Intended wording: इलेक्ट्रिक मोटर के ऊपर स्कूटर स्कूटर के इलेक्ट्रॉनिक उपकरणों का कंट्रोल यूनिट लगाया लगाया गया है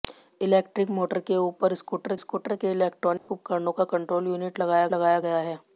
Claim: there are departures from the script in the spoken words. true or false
false